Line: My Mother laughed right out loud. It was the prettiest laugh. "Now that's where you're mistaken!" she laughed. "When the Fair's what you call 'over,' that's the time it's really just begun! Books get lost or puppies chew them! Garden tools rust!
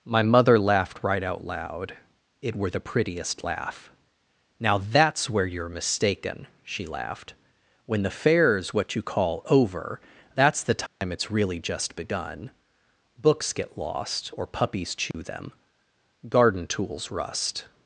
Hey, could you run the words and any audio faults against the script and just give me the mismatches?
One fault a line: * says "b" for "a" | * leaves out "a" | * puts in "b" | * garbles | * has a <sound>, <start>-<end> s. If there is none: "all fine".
* says "were" for "was"
* has a dropout, 10.9-11.0 s
* has a dropout, 15.1-15.1 s